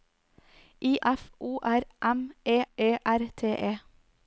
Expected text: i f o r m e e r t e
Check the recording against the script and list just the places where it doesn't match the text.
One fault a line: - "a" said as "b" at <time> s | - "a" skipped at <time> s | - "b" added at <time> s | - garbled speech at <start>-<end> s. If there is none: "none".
none